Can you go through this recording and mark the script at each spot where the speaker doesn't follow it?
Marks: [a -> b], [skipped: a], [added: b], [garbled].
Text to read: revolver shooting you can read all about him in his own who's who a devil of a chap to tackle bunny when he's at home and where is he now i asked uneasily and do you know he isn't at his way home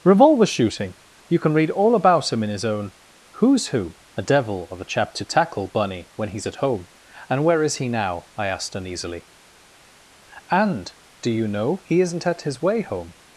revolver shooting you can read all about him in his own who's who a devil of a chap to tackle bunny when he's at home and where is he now i asked uneasily and do you know he isn't at his way home